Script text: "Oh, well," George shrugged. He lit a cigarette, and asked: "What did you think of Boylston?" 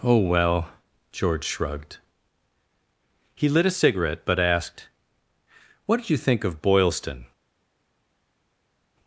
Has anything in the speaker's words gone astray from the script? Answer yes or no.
yes